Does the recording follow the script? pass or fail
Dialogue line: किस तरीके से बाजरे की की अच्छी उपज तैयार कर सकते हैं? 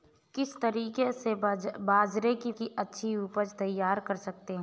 pass